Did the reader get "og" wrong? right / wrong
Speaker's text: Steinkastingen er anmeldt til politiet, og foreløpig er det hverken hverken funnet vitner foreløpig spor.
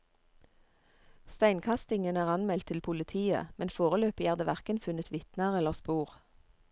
wrong